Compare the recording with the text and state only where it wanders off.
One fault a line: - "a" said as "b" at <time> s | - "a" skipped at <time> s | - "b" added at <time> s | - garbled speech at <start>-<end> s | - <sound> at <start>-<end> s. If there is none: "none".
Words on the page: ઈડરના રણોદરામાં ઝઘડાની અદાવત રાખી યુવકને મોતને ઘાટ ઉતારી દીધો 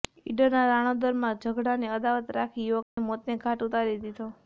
- dropout at 2.8-3.0 s